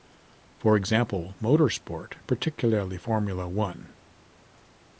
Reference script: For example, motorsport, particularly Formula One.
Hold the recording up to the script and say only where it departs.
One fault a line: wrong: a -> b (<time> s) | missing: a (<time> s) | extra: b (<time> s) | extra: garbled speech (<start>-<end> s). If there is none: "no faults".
no faults